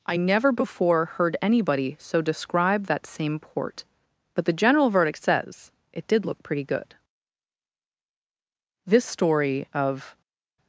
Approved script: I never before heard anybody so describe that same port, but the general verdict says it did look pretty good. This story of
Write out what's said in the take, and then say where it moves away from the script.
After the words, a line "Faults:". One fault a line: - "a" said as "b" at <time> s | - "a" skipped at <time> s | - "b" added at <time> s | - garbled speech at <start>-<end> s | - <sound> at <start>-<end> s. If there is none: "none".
I never before heard anybody so describe that same port, but the general verdict says it did look pretty good. This story of
Faults:
none